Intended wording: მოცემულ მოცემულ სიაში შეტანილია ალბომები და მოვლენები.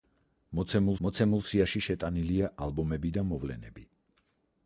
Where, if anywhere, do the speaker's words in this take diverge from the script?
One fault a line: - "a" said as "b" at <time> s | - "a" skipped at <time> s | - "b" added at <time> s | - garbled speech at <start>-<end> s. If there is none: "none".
none